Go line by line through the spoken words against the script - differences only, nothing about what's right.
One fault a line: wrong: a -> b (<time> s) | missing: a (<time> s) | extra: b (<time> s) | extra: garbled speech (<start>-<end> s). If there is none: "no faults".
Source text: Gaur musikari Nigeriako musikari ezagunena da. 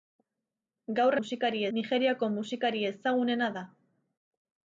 no faults